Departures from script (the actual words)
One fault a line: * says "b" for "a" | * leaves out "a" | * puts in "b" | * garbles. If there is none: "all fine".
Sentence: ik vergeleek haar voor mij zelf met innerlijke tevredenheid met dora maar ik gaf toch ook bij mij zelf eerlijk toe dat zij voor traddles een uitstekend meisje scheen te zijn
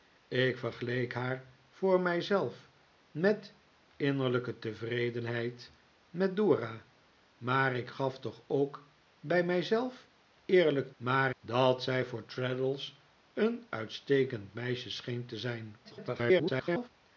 * says "maar" for "toe"
* garbles